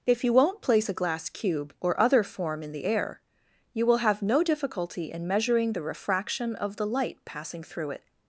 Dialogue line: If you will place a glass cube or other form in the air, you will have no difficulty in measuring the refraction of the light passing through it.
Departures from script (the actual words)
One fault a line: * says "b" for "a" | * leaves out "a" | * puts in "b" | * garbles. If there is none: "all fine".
* says "won't" for "will"